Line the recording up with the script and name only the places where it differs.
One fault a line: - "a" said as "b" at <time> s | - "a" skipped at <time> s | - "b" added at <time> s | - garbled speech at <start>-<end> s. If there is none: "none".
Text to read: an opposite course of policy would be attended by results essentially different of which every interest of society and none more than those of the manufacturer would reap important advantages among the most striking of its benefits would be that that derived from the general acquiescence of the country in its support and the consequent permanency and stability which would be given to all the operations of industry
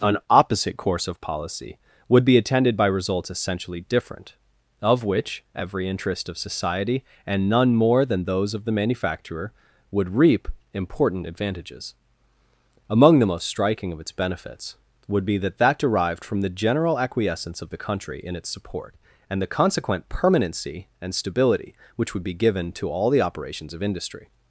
none